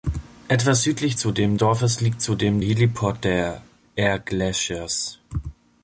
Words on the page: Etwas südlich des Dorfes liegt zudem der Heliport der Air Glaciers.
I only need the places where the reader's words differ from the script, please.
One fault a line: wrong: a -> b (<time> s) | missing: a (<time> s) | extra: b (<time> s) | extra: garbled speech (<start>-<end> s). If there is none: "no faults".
wrong: des -> zudem (1.2 s)
missing: der (2.6 s)